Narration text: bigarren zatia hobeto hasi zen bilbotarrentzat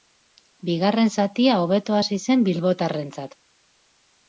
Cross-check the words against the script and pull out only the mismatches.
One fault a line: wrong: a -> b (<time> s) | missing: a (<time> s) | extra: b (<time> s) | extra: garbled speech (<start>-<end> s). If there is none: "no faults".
no faults